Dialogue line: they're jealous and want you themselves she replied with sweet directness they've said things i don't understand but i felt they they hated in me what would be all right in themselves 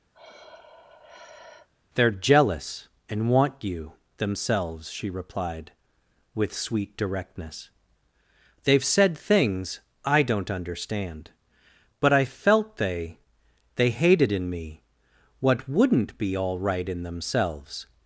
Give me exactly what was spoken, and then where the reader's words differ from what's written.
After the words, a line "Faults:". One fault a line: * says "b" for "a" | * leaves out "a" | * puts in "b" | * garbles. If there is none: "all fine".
they're jealous and want you themselves she replied with sweet directness they've said things i don't understand but i felt they they hated in me what wouldn't be all right in themselves
Faults:
* says "wouldn't" for "would"